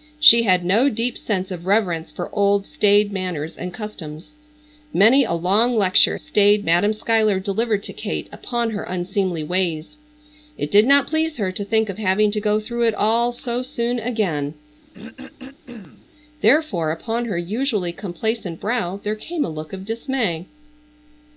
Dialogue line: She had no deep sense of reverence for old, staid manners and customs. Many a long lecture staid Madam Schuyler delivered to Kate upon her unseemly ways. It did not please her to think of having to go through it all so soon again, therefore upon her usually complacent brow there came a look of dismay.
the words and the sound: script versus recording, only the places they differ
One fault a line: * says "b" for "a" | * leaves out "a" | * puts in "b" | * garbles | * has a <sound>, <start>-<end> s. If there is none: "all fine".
* has a throat clearing, 14.9-16.1 s